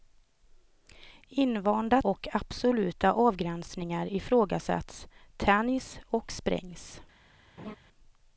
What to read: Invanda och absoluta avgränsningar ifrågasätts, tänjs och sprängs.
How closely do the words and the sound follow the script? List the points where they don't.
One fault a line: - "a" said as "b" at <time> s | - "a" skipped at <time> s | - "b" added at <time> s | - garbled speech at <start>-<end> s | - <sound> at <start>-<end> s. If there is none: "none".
- laugh at 7.6-7.8 s